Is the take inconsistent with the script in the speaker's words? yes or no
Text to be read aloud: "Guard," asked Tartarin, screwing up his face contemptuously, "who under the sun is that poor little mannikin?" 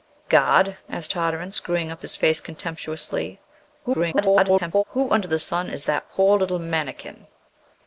yes